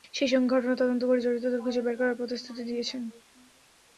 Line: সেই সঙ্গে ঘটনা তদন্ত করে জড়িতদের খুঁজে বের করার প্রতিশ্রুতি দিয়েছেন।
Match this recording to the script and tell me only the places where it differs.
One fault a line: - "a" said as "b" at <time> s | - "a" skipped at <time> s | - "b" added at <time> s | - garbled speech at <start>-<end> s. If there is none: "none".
none